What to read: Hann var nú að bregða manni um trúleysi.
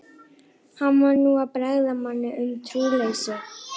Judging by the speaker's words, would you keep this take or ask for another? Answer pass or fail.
pass